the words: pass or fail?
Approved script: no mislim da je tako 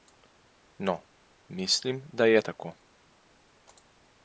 pass